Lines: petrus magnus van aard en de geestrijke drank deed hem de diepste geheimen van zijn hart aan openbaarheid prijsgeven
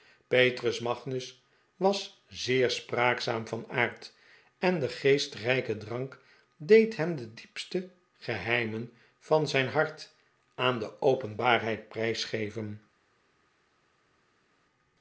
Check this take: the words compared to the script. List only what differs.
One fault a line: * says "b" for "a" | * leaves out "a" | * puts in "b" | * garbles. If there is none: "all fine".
* puts in "was zeer spraakzaam"
* puts in "de"